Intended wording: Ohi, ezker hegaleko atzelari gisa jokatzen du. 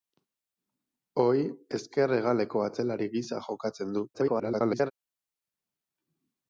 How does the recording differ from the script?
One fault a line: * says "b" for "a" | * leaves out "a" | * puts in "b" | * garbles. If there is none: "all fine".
* garbles